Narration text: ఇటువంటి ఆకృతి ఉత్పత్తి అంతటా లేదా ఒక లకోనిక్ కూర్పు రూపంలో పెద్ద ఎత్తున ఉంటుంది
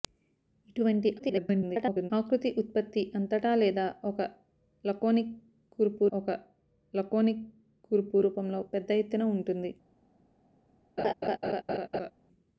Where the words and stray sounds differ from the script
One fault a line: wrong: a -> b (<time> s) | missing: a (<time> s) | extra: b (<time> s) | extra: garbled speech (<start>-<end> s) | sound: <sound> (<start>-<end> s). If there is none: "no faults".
extra: garbled speech (1.2-2.1 s)
extra: ఒక లకోనిక్ కూర్పు (6.1 s)
sound: laugh (11.0-12.1 s)